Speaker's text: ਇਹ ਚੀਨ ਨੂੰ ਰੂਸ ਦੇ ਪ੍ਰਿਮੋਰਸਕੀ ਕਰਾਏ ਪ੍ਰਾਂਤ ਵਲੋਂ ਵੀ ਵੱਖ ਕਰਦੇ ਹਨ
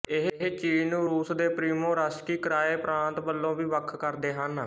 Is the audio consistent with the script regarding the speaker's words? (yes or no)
yes